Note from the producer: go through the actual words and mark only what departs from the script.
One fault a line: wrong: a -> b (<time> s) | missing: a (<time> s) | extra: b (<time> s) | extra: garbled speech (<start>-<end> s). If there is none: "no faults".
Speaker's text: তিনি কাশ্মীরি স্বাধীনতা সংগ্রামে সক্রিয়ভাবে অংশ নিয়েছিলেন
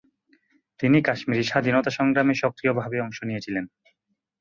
no faults